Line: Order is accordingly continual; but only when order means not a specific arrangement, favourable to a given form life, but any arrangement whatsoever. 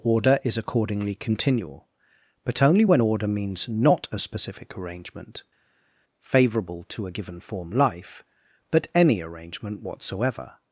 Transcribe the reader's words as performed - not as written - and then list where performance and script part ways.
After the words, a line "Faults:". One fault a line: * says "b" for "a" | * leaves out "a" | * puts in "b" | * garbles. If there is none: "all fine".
Order is accordingly continual; but only when order means not a specific arrangement, favourable to a given form life, but any arrangement whatsoever.
Faults:
all fine